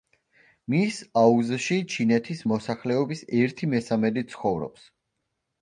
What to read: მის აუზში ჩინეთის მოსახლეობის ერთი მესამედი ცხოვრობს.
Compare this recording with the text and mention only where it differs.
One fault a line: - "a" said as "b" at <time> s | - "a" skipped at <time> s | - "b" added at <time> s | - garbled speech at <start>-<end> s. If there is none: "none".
none